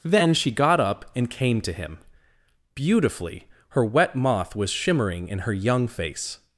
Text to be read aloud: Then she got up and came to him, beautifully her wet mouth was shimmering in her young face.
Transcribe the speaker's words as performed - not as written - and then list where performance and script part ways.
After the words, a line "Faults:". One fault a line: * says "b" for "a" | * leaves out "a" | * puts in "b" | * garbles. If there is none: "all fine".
Then she got up and came to him, beautifully her wet moth was shimmering in her young face.
Faults:
* says "moth" for "mouth"